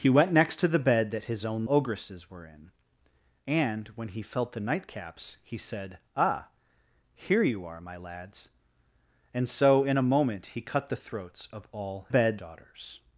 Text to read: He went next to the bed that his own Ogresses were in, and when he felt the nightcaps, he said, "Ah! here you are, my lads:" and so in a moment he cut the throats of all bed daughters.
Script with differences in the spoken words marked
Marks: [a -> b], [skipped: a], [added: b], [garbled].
He went next to the bed that his own Ogresses were in, and when he felt the nightcaps, he said, "Ah! here you are, my lads:" and so in a moment he cut the throats of all bed daughters.